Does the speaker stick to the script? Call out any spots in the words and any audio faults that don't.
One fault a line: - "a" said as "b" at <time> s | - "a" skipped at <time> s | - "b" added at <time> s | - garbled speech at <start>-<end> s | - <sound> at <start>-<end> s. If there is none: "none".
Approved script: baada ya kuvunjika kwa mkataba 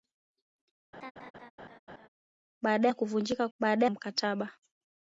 - laugh at 0.9-2.1 s
- "kwa" said as "baada" at 3.6 s